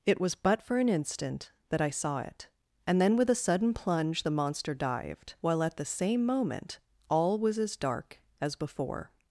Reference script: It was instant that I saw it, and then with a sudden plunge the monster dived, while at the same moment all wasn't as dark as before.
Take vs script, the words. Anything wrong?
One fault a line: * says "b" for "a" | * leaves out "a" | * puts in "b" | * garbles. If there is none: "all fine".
* puts in "but for an"
* says "was" for "wasn't"